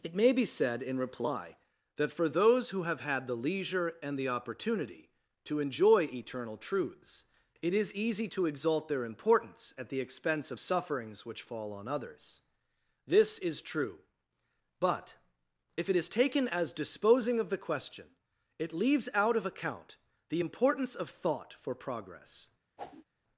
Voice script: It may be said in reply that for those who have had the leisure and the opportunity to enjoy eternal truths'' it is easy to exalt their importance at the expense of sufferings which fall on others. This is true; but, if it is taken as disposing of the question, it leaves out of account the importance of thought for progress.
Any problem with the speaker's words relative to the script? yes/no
no